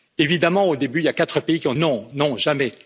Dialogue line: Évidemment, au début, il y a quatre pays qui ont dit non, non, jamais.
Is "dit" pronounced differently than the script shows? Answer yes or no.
yes